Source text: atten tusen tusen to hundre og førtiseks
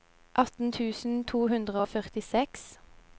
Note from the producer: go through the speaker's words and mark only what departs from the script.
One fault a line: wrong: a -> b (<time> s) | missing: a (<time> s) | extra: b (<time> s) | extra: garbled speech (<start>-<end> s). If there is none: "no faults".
missing: tusen (1.2 s)